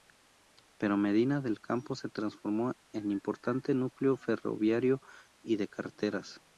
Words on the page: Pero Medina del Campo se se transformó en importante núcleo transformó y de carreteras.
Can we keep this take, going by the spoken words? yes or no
no